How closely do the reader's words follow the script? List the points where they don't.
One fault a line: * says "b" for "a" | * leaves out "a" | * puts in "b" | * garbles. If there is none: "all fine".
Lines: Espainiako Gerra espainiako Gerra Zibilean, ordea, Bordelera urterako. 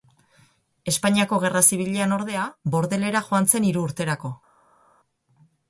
* leaves out "espainiako Gerra"
* puts in "joan zen hiru"